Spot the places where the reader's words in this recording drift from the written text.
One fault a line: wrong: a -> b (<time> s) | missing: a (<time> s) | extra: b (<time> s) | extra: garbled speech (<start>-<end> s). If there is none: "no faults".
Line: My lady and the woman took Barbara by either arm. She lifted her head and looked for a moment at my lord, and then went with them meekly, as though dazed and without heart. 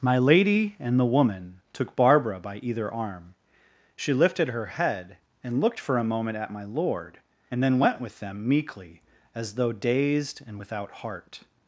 no faults